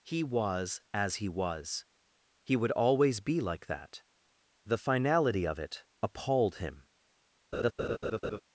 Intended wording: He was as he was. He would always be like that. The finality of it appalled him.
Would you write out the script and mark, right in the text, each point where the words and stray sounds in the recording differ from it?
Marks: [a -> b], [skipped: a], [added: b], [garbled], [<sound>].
He was as he was. He would always be like that. The finality of it appalled him. [laugh]